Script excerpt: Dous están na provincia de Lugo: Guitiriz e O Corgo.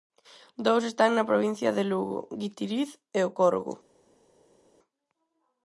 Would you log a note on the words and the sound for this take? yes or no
no